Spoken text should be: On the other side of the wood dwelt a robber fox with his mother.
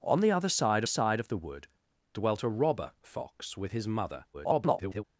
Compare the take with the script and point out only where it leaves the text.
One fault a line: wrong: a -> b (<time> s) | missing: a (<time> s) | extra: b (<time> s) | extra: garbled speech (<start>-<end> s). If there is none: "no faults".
extra: side (0.9 s)
extra: garbled speech (4.3-5.0 s)